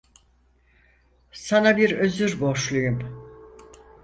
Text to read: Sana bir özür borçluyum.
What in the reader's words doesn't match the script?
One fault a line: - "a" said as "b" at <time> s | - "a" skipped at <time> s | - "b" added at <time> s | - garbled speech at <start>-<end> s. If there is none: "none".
none